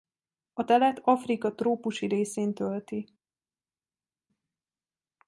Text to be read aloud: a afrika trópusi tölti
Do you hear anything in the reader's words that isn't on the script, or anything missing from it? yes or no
yes